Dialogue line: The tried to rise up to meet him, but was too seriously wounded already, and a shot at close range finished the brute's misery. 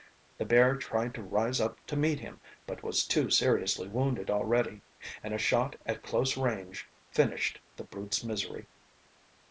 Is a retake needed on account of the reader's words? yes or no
yes